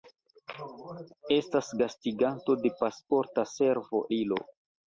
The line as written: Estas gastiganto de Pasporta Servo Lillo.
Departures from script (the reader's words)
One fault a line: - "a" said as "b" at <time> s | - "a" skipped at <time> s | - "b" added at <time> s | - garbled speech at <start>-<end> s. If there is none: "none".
none